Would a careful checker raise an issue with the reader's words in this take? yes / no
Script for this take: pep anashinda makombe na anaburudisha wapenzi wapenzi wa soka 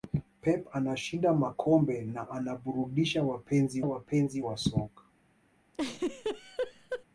no